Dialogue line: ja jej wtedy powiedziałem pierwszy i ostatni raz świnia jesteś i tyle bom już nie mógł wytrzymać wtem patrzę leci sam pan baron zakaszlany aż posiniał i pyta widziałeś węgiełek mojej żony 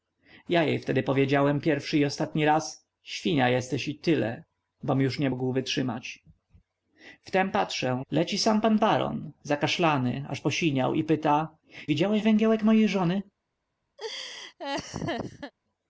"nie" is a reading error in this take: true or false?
false